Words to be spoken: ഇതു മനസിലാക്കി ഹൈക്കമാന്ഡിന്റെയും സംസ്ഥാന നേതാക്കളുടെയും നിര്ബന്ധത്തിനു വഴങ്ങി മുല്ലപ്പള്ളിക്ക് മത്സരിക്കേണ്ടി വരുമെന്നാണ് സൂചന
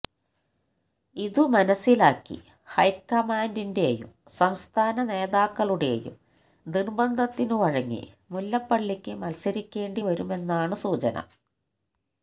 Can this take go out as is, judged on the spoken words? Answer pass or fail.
pass